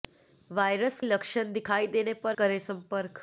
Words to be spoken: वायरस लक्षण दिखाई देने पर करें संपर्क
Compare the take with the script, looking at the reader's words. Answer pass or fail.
pass